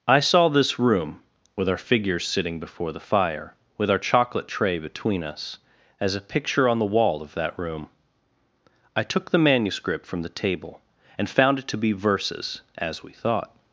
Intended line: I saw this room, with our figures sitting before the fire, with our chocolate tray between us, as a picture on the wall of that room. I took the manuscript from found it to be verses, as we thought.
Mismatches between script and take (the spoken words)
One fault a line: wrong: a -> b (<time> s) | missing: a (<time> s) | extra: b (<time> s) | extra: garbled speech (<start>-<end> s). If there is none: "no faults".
extra: the table and (10.2 s)